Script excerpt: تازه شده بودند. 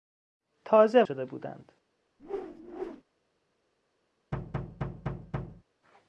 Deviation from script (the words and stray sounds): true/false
true